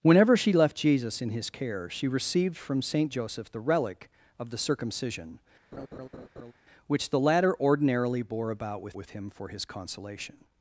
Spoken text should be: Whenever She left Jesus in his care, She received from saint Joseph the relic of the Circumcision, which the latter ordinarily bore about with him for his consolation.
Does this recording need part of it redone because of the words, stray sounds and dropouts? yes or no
yes